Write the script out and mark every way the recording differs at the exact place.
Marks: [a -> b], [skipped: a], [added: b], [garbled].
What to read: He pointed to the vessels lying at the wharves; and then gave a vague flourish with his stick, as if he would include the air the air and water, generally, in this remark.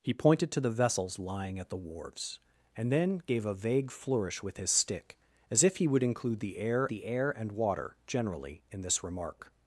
He pointed to the vessels lying at the wharves; and then gave a vague flourish with his stick, as if he would include the air the air and water, generally, in this remark.